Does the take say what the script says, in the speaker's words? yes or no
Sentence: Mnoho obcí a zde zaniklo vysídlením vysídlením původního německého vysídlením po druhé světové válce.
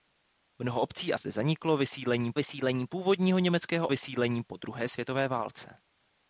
yes